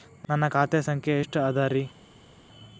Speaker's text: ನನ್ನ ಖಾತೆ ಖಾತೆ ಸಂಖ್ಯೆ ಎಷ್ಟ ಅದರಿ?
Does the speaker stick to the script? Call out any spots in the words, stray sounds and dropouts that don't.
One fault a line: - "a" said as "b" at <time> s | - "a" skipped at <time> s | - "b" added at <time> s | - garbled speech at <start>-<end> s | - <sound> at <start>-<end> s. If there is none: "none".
- "ಖಾತೆ" skipped at 0.8 s